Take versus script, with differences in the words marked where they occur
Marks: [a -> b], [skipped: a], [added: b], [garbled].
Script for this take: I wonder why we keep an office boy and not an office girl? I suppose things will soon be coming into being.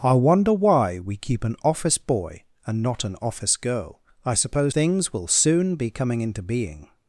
I wonder why we keep an office boy and not an office girl? I suppose things will soon be coming into being.